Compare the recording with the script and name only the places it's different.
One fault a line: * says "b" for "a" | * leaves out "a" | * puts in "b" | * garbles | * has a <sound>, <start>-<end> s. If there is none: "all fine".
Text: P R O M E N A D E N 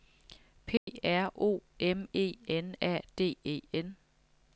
* has a dropout, 0.8-0.9 s